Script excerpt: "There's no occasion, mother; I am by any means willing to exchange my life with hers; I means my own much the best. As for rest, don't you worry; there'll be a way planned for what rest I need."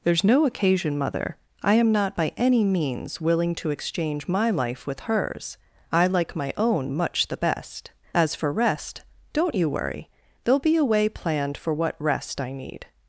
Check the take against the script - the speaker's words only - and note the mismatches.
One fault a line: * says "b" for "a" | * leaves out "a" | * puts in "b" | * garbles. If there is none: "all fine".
* puts in "not"
* says "like" for "means"